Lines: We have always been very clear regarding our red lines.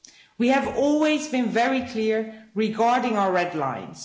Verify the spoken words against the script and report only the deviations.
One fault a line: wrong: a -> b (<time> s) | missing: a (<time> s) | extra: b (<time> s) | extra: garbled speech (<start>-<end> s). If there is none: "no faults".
no faults